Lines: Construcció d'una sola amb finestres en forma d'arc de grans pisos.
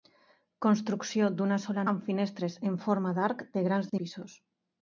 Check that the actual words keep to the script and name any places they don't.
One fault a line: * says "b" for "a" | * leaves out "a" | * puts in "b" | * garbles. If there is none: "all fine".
all fine